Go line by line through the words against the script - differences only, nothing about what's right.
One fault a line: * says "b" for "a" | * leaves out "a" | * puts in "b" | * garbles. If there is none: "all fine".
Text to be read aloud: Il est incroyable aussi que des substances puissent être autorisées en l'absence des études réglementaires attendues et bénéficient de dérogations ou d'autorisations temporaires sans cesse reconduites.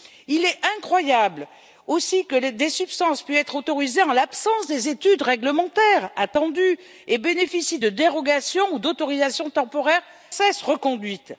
* leaves out "sans"